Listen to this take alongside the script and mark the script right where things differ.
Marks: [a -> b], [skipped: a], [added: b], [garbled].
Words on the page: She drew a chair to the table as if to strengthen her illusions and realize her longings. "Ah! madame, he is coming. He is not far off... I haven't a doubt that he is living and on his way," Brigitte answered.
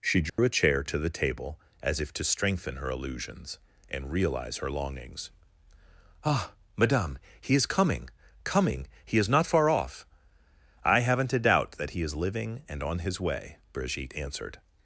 She drew a chair to the table as if to strengthen her illusions and realize her longings. "Ah! madame, he is coming. [added: coming] He is not far off... I haven't a doubt that he is living and on his way," Brigitte answered.